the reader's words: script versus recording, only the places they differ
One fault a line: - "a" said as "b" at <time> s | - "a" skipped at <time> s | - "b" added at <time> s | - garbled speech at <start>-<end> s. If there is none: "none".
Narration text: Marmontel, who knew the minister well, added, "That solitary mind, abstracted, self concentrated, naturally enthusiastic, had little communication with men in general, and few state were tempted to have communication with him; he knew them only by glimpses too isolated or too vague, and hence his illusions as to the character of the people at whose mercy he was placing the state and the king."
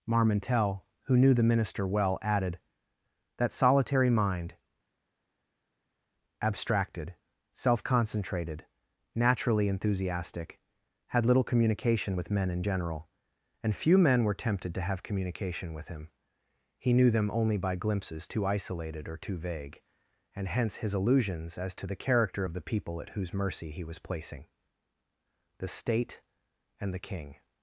- "state" said as "men" at 14.0 s